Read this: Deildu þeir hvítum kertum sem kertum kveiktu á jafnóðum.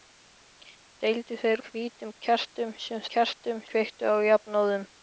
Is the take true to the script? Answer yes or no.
yes